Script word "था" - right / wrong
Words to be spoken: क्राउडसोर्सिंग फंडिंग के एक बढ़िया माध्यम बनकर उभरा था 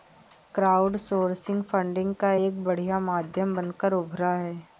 wrong